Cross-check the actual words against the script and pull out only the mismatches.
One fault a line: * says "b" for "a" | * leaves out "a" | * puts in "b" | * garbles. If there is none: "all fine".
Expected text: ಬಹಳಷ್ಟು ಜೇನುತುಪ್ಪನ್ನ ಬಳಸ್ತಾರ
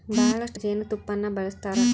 all fine